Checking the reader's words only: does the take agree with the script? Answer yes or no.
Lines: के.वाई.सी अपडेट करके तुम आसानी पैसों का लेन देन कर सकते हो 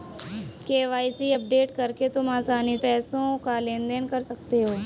yes